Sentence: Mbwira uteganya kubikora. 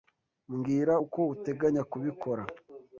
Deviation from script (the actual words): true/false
true